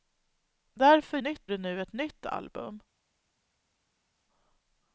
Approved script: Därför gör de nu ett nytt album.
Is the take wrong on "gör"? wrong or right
wrong